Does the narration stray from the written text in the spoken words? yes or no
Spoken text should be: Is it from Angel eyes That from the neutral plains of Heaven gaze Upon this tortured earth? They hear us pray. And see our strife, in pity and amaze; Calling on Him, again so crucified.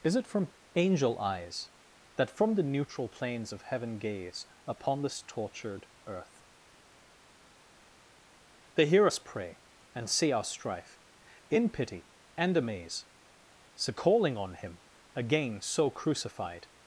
yes